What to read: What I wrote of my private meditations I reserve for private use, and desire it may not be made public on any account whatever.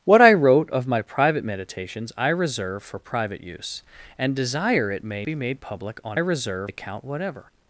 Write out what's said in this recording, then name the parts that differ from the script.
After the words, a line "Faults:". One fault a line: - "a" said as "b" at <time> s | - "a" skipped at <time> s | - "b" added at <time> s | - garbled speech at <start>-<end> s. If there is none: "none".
What I wrote of my private meditations I reserve for private use, and desire it may be made public on reserve account whatever.
Faults:
- "not" skipped at 5.3 s
- "any" said as "reserve" at 6.2 s